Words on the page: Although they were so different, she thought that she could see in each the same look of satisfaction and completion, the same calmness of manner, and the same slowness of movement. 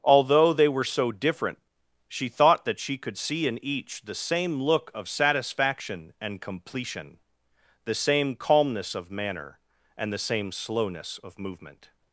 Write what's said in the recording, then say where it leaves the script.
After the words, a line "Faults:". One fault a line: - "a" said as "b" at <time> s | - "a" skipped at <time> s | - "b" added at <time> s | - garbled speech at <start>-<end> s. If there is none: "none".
Although they were so different, she thought that she could see in each the same look of satisfaction and completion, the same calmness of manner, and the same slowness of movement.
Faults:
none